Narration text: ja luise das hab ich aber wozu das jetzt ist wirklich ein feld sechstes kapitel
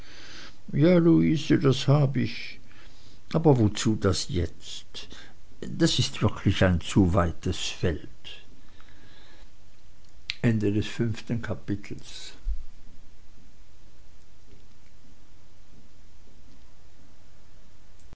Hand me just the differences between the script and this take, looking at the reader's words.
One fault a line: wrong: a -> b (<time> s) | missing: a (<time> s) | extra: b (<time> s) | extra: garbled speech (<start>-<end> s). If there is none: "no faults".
extra: das (5.8 s)
extra: zu weites (6.8 s)